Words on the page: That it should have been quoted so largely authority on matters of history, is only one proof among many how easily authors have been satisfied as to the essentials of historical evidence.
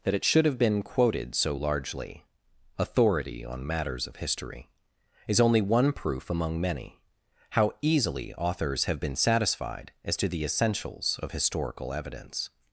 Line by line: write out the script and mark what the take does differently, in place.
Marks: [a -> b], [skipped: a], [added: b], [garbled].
That it should have been quoted so largely authority on matters of history, is only one proof among many how easily authors have been satisfied as to the essentials of historical evidence.